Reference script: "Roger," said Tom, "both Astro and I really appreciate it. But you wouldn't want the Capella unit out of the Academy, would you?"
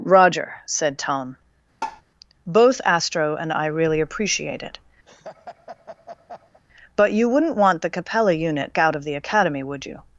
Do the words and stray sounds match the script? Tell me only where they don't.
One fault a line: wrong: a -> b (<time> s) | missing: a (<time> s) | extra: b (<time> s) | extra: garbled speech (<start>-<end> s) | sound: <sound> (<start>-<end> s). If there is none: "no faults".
sound: tap (1.8-2.0 s)
sound: laugh (5.1-6.6 s)